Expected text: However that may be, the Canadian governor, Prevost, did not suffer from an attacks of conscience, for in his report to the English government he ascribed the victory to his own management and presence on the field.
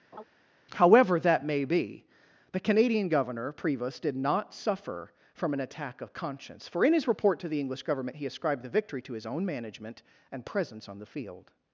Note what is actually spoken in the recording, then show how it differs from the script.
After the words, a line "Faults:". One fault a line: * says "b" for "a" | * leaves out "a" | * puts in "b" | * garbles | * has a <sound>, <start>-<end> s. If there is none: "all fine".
However that may be, the Canadian governor, Prevost, did not suffer from an attack of conscience, for in his report to the English government he ascribed the victory to his own management and presence on the field.
Faults:
* has a laugh, 0.1-0.2 s
* says "attack" for "attacks"